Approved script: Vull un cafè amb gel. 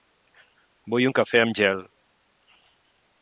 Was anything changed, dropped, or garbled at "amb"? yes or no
no